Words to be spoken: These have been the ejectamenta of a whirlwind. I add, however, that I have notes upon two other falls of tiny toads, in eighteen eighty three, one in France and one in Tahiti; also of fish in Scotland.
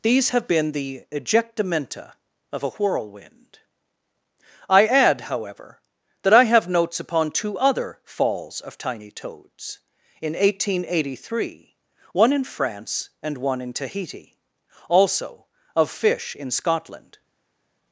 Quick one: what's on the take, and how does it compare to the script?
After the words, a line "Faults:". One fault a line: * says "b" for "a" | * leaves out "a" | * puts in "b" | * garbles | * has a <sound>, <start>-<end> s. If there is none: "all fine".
These have been the ejectamenta of a whirlwind. I add, however, that I have notes upon two other falls of tiny toads, in eighteen eighty three, one in France and one in Tahiti; also of fish in Scotland.
Faults:
all fine